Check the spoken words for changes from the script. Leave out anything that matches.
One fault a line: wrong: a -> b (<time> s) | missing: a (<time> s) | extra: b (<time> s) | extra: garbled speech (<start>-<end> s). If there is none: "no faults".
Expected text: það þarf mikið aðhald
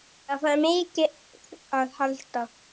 no faults